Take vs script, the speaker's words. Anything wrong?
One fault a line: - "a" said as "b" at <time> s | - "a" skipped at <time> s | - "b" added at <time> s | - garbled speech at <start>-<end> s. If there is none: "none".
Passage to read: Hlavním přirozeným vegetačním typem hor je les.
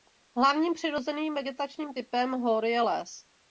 none